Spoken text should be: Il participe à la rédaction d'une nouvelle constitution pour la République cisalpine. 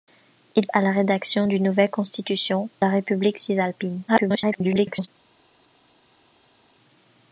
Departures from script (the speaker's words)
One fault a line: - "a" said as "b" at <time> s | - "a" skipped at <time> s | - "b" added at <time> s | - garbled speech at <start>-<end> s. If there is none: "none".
- "participe" skipped at 0.7 s
- "pour" skipped at 2.7 s
- garbled speech at 4.1-5.1 s